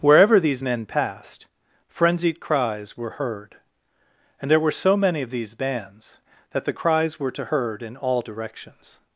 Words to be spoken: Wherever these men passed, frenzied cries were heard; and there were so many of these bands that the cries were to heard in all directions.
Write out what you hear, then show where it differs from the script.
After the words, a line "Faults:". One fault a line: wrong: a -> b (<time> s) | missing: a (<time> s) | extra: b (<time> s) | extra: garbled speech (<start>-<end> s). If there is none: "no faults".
Wherever these men passed, frenzied cries were heard; and there were so many of these bands that the cries were to heard in all directions.
Faults:
no faults